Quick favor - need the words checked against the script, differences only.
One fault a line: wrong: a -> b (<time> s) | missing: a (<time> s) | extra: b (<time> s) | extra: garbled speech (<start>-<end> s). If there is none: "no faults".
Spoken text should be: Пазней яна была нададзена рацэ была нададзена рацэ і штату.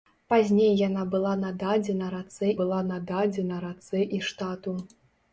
no faults